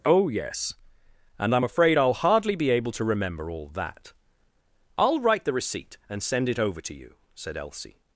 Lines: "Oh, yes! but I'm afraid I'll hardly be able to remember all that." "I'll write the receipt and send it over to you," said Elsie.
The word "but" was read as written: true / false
false